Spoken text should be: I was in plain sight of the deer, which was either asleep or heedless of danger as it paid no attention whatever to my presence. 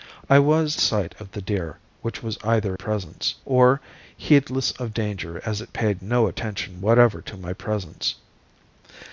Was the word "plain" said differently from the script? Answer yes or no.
yes